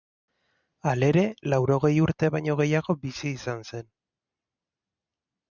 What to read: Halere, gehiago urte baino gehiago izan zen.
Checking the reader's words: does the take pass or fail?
fail